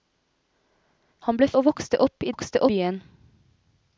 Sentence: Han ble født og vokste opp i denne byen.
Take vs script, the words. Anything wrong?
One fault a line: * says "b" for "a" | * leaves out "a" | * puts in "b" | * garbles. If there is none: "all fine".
* leaves out "født"
* says "vokste" for "denne"